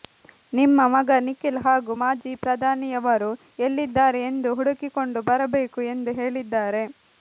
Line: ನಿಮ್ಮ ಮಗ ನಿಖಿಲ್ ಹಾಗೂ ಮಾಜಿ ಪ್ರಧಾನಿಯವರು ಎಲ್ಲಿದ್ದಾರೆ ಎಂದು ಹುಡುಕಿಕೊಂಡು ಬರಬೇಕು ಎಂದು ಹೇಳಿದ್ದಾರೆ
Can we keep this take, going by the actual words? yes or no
yes